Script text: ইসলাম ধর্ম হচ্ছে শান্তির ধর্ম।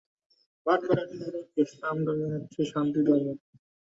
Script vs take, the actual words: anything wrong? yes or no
no